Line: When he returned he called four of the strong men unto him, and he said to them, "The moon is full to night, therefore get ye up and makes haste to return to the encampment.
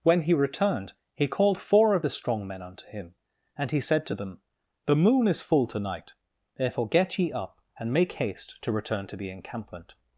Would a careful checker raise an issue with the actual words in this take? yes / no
yes